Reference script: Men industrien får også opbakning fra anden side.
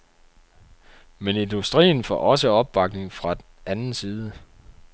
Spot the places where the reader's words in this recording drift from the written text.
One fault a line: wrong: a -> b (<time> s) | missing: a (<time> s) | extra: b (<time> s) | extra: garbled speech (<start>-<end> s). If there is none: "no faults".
no faults